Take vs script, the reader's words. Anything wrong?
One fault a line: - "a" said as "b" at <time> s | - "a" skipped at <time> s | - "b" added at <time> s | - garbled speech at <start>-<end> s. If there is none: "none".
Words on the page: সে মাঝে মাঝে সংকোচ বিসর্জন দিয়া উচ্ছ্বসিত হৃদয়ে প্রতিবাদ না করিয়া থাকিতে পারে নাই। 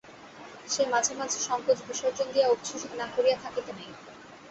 - "হৃদয়ে প্রতিবাদ" skipped at 2.9 s
- "পারে" skipped at 3.7 s